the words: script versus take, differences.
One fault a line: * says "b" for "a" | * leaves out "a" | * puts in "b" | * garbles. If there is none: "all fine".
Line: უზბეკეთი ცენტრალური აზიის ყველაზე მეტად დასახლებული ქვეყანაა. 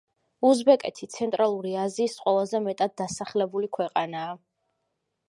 all fine